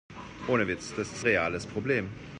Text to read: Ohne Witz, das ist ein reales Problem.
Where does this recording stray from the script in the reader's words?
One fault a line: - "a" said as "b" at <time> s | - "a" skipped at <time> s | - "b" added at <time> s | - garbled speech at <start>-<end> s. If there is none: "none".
- "ein" skipped at 1.2 s